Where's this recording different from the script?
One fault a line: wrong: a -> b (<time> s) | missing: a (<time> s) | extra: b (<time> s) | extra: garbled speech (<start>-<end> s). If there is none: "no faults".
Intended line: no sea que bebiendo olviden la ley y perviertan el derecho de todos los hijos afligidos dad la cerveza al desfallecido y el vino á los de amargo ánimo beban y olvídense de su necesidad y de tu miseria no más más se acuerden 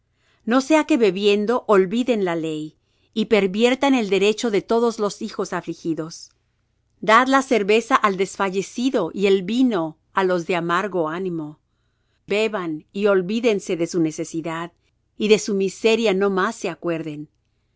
wrong: tu -> su (15.4 s)
missing: más (16.6 s)